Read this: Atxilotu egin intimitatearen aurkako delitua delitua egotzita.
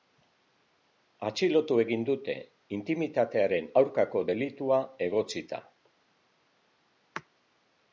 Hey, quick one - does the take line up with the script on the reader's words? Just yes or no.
no